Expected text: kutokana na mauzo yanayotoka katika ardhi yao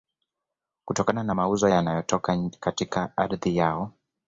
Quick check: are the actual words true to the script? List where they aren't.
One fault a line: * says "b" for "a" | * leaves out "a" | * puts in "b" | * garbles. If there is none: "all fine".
all fine